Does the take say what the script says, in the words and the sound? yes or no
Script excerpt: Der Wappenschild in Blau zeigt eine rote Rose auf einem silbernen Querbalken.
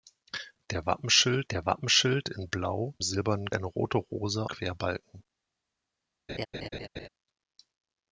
no